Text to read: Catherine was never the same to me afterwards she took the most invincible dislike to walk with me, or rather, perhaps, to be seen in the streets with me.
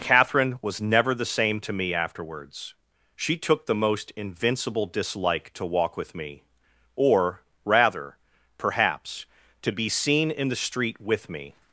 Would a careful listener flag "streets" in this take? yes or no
yes